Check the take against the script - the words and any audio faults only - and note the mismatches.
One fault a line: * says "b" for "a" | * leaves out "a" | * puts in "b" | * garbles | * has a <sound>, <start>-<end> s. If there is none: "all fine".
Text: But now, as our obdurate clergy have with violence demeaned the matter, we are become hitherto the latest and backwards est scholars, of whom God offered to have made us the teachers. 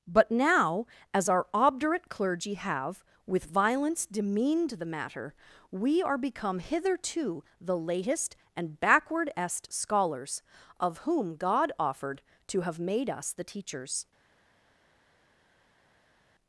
* says "backward" for "backwards"